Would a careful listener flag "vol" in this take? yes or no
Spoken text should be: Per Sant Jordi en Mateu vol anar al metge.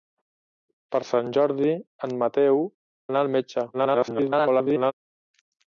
yes